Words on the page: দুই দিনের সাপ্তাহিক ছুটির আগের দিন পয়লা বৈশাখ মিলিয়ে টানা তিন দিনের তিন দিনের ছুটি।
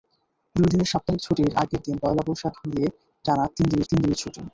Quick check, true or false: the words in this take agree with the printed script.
true